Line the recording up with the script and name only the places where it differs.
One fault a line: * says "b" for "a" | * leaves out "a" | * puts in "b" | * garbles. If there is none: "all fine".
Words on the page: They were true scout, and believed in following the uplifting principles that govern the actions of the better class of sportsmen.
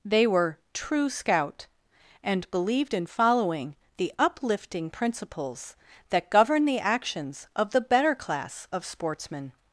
all fine